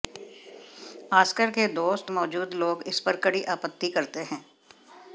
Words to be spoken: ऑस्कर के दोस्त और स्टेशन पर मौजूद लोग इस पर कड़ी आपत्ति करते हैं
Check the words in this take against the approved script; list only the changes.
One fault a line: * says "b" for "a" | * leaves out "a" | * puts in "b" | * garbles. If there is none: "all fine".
* leaves out "और स्टेशन पर"